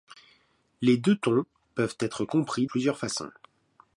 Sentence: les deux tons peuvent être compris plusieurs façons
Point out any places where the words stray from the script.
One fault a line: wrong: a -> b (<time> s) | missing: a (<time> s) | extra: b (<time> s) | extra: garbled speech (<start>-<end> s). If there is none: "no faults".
no faults